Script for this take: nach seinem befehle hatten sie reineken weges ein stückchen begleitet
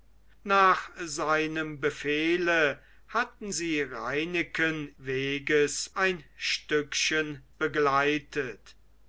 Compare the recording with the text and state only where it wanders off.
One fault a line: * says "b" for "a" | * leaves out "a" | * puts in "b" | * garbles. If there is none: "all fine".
all fine